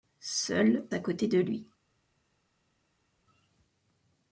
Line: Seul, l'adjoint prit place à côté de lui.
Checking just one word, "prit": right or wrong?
wrong